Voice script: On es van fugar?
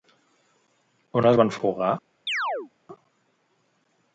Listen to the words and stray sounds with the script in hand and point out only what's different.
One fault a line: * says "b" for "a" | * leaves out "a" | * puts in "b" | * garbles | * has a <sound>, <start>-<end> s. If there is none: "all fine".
* has a chirp, 2.3-2.7 s